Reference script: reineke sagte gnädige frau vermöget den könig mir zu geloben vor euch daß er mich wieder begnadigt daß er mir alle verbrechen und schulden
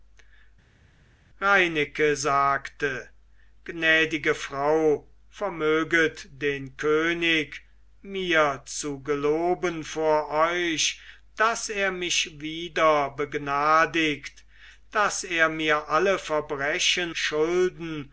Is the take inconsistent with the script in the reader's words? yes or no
yes